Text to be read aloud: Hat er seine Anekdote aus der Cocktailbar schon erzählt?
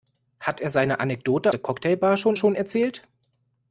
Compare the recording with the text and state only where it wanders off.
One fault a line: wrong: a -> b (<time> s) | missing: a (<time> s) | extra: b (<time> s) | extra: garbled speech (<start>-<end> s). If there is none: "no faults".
missing: aus (1.5 s)
extra: schon (2.4 s)